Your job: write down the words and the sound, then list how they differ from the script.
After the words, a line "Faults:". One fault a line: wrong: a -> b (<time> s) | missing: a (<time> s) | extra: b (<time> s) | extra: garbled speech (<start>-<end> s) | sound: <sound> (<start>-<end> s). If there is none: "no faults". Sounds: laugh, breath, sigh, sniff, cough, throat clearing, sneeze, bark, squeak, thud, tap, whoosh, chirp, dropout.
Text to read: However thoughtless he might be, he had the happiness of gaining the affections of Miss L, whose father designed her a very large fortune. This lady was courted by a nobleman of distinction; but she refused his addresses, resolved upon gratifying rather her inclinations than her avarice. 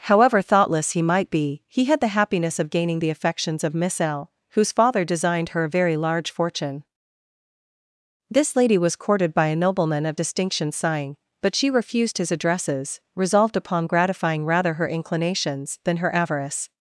However thoughtless he might be, he had the happiness of gaining the affections of Miss L, whose father designed her a very large fortune. This lady was courted by a nobleman of distinction; sighing but she refused his addresses, resolved upon gratifying rather her inclinations than her avarice.
Faults:
extra: sighing (10.7 s)